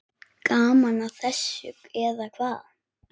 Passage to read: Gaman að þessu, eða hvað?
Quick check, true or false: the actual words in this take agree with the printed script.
true